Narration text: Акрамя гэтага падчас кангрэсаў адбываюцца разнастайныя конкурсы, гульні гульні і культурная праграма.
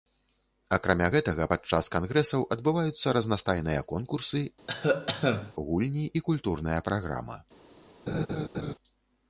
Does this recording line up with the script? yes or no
no